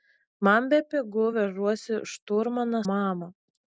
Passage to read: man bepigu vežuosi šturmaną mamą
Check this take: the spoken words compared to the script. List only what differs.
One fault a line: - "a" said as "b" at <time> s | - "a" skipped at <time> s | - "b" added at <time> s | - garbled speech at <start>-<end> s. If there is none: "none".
none